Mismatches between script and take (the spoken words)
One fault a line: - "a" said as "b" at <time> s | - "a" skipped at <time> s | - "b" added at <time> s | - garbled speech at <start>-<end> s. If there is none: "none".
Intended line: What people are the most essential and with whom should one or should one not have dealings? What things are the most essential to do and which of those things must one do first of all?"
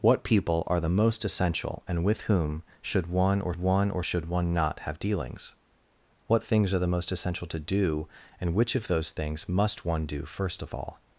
- "one or" added at 3.5 s